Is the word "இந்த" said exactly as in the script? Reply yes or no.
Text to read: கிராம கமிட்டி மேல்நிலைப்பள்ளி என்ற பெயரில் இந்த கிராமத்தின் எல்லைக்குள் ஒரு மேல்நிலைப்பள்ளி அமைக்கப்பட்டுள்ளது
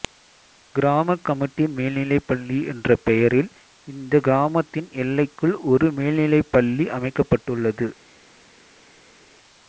yes